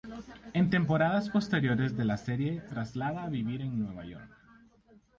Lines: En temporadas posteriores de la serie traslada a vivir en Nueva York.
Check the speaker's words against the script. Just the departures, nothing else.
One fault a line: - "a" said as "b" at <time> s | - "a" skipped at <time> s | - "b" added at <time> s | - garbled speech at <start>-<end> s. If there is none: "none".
none